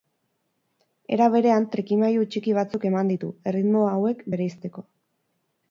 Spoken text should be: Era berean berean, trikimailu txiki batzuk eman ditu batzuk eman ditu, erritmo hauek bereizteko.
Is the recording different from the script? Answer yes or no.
yes